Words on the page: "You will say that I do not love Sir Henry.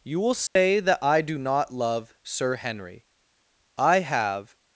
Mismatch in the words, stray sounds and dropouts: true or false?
true